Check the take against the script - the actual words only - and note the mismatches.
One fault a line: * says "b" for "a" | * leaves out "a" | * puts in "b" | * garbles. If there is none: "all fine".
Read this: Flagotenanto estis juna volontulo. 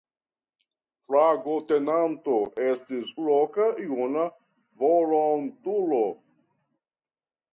* puts in "loka"